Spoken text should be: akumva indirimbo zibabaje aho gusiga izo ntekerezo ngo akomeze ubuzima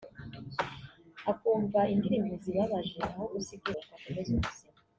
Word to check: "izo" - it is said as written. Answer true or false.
false